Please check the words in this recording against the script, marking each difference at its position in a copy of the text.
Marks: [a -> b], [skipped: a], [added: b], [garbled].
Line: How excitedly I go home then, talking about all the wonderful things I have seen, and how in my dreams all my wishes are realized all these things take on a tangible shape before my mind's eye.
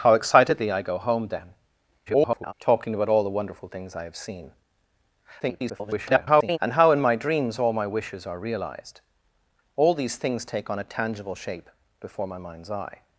How excitedly I go home then, [garbled] talking about all the wonderful things I have seen, [garbled] and how in my dreams all my wishes are realized all these things take on a tangible shape before my mind's eye.